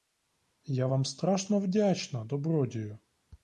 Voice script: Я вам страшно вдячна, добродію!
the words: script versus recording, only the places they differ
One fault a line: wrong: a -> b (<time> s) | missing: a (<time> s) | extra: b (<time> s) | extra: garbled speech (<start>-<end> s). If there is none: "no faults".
no faults